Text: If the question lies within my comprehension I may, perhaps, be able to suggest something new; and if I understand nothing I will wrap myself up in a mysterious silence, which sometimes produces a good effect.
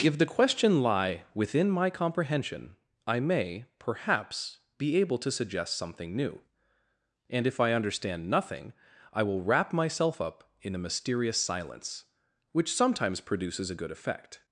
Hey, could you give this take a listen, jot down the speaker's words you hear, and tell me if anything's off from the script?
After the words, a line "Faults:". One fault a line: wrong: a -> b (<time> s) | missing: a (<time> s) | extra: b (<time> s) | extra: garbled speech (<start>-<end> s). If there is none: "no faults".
If the question lie within my comprehension I may, perhaps, be able to suggest something new; and if I understand nothing I will wrap myself up in a mysterious silence, which sometimes produces a good effect.
Faults:
wrong: lies -> lie (0.8 s)